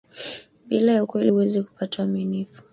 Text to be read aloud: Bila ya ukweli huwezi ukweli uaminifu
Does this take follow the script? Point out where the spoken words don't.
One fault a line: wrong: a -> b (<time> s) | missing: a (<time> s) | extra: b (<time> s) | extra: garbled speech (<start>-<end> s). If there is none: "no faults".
wrong: ukweli -> kupata (1.6 s)